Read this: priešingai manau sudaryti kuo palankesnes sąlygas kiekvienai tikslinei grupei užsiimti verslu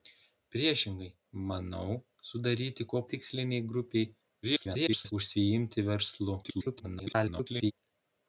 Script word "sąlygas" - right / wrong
wrong